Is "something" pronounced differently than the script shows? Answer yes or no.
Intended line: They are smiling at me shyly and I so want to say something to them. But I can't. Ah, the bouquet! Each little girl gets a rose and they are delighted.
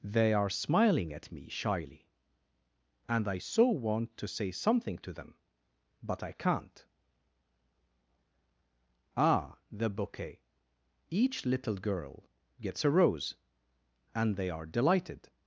no